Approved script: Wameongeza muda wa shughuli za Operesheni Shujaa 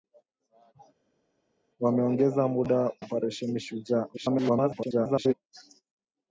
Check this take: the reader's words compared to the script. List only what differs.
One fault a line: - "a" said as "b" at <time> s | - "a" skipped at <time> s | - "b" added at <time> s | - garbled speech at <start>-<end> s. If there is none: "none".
- "wa shughuli za" skipped at 2.9 s
- garbled speech at 4.1-5.3 s